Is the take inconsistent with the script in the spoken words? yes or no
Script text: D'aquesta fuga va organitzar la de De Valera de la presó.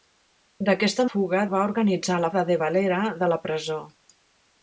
no